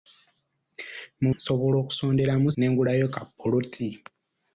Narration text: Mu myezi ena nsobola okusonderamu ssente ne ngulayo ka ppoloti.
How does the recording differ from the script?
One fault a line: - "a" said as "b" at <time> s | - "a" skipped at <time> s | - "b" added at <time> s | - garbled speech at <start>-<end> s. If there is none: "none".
- "myezi ena" skipped at 1.3 s
- "ssente" skipped at 2.5 s